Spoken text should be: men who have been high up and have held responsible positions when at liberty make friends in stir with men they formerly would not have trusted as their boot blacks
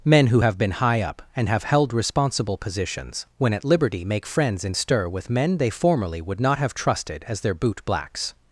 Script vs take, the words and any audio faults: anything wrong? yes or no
no